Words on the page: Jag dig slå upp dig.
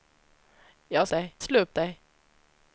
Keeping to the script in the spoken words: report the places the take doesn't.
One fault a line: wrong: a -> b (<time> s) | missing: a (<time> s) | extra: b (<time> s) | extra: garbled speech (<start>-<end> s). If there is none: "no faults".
no faults